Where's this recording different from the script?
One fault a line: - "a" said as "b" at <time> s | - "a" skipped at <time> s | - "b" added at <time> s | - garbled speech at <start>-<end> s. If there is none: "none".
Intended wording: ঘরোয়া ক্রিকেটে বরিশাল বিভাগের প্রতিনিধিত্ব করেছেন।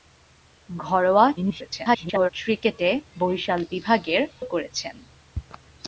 - garbled speech at 1.4-2.3 s
- "প্রতিনিধিত্ব" skipped at 4.2 s